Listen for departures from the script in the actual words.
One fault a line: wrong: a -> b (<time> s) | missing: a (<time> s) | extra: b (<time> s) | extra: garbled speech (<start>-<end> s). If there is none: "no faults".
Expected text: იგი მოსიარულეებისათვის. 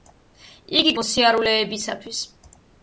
no faults